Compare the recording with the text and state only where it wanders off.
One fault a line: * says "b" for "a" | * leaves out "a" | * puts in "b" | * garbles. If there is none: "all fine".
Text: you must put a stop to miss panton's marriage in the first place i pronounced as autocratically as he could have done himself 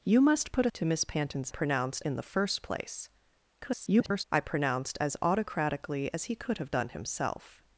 * leaves out "stop"
* says "pronounced" for "marriage"
* garbles